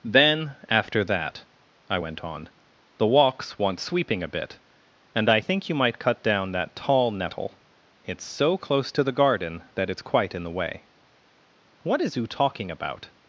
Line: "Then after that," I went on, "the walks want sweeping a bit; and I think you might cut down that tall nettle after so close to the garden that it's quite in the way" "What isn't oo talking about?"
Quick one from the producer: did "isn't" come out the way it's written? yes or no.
no